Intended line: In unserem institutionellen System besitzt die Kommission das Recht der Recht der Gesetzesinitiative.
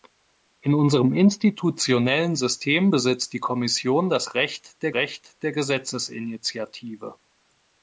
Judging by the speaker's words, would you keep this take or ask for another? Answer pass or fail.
pass